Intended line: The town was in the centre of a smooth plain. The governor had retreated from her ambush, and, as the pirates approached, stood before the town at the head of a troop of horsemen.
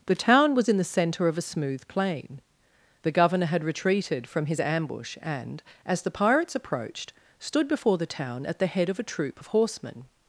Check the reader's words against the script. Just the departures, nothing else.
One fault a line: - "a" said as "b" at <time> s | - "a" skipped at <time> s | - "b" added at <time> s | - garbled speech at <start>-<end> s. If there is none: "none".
- "her" said as "his" at 4.5 s